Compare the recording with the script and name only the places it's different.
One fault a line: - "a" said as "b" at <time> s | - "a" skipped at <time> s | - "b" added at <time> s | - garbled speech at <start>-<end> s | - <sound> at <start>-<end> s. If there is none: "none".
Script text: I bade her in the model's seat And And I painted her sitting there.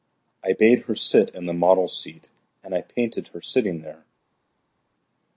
- "sit" added at 0.9 s
- "And" skipped at 2.7 s